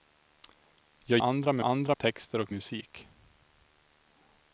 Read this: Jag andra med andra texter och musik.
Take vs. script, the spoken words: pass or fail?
pass